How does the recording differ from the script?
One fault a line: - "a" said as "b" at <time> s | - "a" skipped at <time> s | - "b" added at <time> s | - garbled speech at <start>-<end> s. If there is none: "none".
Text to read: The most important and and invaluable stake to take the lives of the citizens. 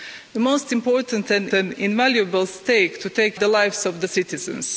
none